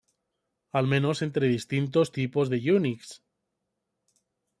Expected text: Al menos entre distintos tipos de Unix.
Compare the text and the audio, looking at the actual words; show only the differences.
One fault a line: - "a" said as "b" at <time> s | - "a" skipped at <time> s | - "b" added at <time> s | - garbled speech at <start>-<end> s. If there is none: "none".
none